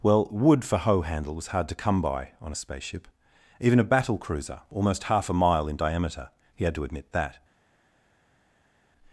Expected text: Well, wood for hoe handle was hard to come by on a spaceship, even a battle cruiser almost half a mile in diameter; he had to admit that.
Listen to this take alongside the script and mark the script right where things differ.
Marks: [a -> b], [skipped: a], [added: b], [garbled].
Well, wood for hoe handle was hard to come by on a spaceship, even a battle cruiser almost half a mile in diameter; he had to admit that.